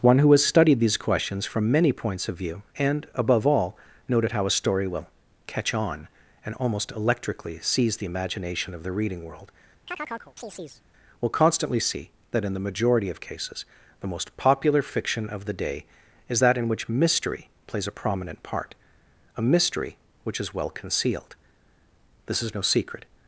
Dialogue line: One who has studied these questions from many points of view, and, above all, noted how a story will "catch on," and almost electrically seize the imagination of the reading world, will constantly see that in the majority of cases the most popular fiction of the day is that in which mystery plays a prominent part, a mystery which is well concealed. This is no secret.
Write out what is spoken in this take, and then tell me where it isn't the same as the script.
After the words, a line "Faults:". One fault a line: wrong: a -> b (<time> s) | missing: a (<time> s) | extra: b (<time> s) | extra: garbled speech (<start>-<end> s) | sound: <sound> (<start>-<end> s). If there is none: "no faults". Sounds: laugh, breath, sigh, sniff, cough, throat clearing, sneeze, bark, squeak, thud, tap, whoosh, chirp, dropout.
One who has studied these questions from many points of view, and, above all, noted how a story will "catch on," and almost electrically seize the imagination of the reading world, will constantly see that in the majority of cases the most popular fiction of the day is that in which mystery plays a prominent part, a mystery which is well concealed. This is no secret.
Faults:
sound: chirp (9.9-10.8 s)